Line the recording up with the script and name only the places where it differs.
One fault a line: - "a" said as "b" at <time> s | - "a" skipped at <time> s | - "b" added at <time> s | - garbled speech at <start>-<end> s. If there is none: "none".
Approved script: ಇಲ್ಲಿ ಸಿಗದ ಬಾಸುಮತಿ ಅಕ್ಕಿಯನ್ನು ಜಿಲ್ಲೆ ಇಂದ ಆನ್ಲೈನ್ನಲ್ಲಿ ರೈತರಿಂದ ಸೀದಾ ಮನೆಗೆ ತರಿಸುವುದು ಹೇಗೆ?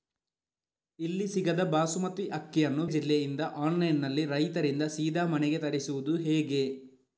none